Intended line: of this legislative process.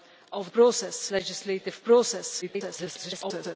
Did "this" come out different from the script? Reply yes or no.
yes